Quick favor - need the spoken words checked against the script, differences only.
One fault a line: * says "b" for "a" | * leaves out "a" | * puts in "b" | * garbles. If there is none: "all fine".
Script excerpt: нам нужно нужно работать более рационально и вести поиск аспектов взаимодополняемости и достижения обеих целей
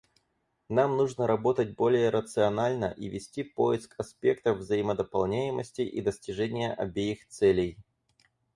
* leaves out "нужно"